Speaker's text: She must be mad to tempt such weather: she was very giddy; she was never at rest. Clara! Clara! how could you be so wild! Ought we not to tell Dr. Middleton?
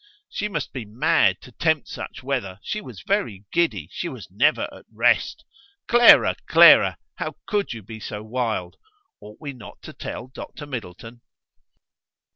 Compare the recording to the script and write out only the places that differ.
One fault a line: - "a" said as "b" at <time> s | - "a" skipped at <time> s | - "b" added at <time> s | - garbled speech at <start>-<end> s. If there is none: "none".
none